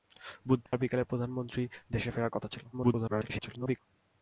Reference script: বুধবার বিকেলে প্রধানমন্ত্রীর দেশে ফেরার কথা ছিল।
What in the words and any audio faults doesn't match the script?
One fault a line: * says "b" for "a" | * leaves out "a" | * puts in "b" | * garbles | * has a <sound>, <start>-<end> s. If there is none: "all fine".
* has a dropout, 0.7-0.7 s
* garbles